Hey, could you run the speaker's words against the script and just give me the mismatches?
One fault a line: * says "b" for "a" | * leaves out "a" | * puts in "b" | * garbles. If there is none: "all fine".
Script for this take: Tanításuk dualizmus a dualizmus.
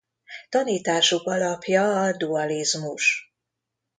* says "alapja" for "dualizmus"